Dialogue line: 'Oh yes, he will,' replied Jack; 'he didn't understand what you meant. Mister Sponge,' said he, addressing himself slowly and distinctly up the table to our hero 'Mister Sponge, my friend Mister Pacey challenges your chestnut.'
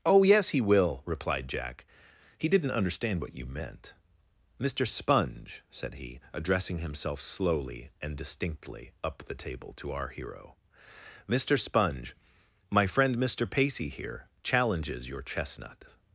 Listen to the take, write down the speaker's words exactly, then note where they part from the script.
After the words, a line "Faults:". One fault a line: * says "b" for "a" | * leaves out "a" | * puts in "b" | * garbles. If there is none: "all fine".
'Oh yes, he will,' replied Jack; 'he didn't understand what you meant. Mister Sponge,' said he, addressing himself slowly and distinctly up the table to our hero 'Mister Sponge, my friend Mister Pacey here challenges your chestnut.'
Faults:
* puts in "here"